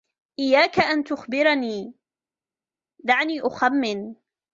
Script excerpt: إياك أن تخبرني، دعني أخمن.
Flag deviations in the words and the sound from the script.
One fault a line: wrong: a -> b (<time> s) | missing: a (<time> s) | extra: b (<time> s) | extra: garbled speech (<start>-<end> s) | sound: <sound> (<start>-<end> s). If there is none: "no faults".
no faults